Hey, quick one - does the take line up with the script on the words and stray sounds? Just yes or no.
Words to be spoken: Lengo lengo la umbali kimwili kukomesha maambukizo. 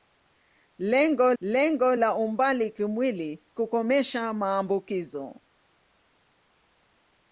yes